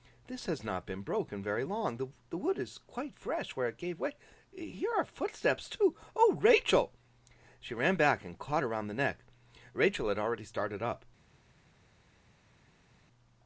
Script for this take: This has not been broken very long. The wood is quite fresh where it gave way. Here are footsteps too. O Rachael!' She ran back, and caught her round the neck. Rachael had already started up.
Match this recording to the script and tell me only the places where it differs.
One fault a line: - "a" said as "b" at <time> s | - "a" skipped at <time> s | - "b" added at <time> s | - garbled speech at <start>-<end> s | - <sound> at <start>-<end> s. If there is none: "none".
none